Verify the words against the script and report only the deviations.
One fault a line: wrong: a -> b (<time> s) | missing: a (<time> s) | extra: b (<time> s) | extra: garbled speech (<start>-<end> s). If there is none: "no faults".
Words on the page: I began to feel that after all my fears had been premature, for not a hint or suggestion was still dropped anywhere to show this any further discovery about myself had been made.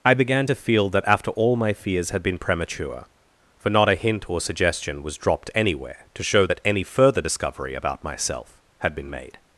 missing: still (5.2 s)
wrong: this -> that (6.4 s)